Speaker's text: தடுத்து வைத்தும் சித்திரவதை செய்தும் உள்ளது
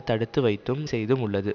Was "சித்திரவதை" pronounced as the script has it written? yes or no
no